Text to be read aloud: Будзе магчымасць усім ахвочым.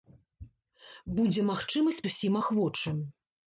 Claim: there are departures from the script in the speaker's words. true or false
false